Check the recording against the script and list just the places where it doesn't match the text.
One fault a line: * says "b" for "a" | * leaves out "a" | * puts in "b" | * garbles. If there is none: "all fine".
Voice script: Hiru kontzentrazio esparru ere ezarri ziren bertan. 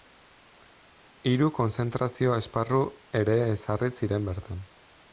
all fine